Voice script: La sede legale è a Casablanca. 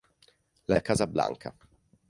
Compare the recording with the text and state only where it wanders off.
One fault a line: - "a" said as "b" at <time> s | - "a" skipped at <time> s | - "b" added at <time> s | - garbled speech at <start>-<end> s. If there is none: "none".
- "sede legale" skipped at 0.8 s